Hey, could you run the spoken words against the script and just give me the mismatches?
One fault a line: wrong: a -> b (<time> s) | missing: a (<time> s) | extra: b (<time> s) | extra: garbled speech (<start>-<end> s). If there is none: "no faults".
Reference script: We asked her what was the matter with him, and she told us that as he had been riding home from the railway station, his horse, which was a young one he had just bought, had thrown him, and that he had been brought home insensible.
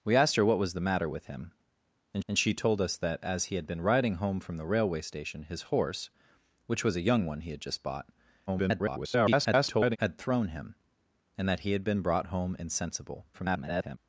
extra: and (2.3 s)
extra: garbled speech (8.5-10.0 s)
extra: garbled speech (13.3-14.0 s)